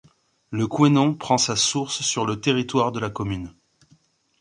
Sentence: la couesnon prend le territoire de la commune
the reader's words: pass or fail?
fail